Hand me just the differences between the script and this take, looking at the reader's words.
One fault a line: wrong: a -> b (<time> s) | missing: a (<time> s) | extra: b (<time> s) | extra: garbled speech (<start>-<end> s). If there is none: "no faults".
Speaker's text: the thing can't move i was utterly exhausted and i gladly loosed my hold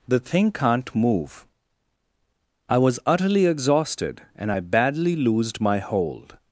wrong: gladly -> badly (4.6 s)